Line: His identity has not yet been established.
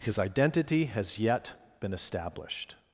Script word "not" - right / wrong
wrong